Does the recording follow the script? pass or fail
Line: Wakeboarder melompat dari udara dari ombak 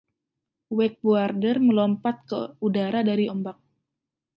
fail